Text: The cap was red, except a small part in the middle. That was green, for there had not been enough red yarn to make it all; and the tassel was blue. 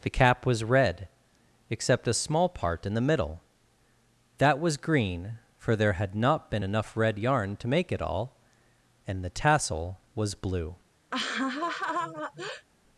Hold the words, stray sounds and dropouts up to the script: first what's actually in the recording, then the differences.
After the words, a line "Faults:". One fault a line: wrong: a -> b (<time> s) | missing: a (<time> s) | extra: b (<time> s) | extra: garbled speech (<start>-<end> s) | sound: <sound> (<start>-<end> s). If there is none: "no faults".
The cap was red, except a small part in the middle. That was green, for there had not been enough red yarn to make it all; and the tassel was blue.
Faults:
sound: laugh (11.1-12.7 s)